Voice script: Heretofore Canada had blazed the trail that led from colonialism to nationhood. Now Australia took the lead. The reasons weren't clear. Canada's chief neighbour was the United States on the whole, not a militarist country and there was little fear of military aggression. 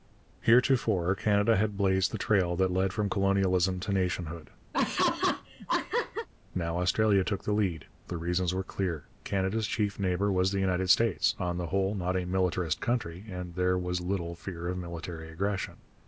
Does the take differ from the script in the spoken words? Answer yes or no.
yes